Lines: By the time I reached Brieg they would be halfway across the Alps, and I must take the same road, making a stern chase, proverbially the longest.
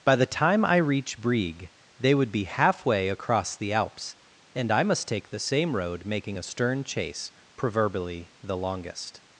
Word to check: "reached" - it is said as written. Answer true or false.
false